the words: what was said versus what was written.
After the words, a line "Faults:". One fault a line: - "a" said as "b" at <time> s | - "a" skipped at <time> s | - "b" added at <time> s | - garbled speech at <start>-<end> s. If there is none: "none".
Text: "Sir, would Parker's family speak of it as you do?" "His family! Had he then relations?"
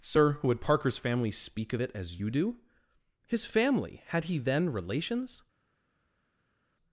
"Sir, would Parker's family speak of it as you do?" "His family! Had he then relations?"
Faults:
none